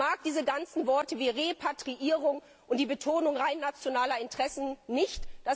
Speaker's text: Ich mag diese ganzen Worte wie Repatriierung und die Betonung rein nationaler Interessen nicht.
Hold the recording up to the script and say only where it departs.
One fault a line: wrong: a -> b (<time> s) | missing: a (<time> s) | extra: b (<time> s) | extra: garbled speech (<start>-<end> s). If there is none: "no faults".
no faults